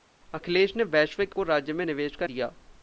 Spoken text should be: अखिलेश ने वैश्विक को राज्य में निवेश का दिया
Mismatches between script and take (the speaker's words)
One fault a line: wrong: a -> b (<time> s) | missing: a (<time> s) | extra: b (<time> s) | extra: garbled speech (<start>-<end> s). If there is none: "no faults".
no faults